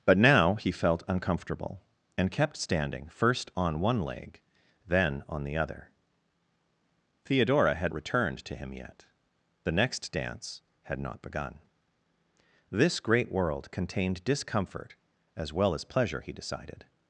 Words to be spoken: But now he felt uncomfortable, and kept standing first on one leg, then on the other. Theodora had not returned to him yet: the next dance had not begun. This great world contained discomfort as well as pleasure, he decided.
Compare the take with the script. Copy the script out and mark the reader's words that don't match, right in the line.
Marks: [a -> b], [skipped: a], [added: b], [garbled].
But now he felt uncomfortable, and kept standing first on one leg, then on the other. Theodora had [skipped: not] returned to him yet: the next dance had not begun. This great world contained discomfort as well as pleasure, he decided.